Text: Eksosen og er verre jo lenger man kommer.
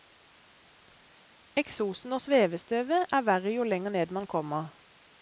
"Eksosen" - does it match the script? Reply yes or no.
yes